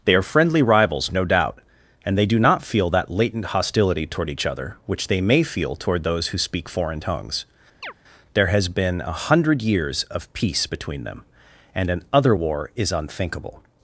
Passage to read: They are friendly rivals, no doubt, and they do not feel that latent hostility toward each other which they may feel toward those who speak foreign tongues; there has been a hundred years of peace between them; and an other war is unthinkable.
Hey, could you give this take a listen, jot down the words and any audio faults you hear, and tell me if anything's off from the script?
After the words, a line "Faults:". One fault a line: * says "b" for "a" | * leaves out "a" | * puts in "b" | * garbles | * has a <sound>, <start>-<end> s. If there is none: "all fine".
They are friendly rivals, no doubt, and they do not feel that latent hostility toward each other which they may feel toward those who speak foreign tongues; there has been a hundred years of peace between them; and an other war is unthinkable.
Faults:
* has a chirp, 7.8-7.9 s